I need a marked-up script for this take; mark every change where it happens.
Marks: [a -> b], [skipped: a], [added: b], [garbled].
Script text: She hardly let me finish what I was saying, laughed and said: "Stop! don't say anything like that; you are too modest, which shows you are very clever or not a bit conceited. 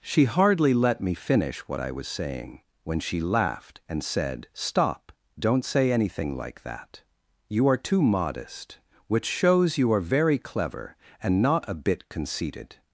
She hardly let me finish what I was saying, [added: when she] laughed and said: "Stop! don't say anything like that; you are too modest, which shows you are very clever [or -> and] not a bit conceited.